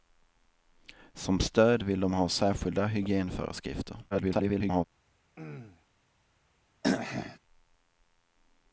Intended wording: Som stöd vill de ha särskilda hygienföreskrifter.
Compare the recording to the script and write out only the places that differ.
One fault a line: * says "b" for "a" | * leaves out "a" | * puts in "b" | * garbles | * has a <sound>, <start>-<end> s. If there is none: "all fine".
* garbles
* has a throat clearing, 5.4-5.9 s
* has a throat clearing, 6.8-7.4 s